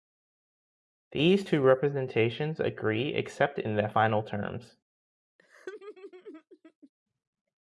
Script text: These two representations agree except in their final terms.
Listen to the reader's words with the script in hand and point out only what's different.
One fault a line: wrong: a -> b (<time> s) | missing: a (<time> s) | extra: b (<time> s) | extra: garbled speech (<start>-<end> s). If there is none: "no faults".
no faults